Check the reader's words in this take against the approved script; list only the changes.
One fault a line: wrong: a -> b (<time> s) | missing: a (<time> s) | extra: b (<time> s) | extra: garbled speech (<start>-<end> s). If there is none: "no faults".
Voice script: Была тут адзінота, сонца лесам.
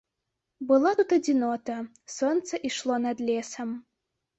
extra: ішло над (2.7 s)